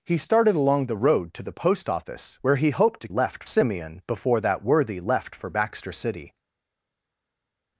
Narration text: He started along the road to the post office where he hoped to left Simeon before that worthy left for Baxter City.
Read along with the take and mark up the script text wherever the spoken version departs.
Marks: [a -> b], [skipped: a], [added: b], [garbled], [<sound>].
He started along the road to the post office where he hoped to left Simeon before that worthy left for Baxter City.